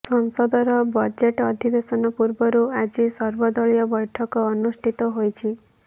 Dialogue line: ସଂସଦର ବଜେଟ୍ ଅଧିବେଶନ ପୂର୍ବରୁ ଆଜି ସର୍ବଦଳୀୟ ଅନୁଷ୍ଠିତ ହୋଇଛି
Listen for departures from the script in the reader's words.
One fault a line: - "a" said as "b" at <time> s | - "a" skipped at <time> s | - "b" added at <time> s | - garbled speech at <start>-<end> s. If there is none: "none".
- "ବୈଠକ" added at 4.0 s